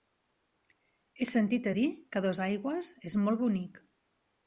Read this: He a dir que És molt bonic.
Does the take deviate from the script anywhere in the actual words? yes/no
yes